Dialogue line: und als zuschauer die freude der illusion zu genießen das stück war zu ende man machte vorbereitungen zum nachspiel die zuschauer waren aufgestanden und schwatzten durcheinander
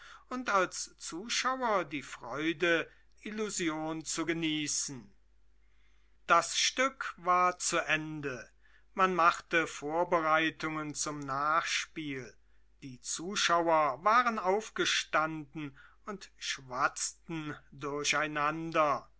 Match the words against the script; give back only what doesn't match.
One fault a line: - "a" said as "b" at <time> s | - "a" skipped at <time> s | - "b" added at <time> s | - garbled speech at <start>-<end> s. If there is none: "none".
- "der" skipped at 2.9 s